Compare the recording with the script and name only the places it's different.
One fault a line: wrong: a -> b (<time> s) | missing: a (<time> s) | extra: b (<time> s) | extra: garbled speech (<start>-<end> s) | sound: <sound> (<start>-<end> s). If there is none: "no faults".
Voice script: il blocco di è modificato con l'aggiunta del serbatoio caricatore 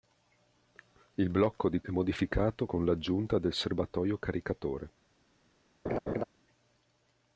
sound: laugh (5.9-6.2 s)